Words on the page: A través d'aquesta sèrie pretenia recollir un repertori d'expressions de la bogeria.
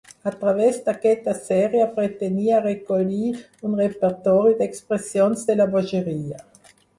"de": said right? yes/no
yes